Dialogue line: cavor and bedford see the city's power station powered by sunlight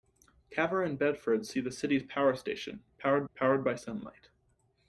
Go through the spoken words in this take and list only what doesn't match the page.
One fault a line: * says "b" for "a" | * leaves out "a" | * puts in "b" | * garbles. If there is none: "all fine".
* puts in "powered"